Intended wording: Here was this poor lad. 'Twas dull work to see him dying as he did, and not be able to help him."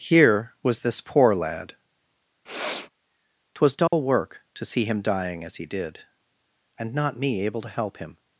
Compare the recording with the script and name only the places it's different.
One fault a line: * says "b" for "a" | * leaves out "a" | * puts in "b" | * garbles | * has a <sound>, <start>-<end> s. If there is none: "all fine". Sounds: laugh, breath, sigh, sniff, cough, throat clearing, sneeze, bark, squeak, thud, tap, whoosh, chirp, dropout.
* has a sniff, 2.5-2.9 s
* has a dropout, 3.9-3.9 s
* says "me" for "be"